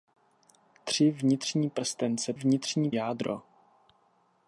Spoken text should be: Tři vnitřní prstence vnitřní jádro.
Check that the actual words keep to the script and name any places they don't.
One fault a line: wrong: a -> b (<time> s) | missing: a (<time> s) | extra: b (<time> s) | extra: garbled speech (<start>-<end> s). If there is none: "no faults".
no faults